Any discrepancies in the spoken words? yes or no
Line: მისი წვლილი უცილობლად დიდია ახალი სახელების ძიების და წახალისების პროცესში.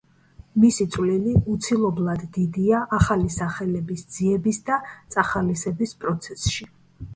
no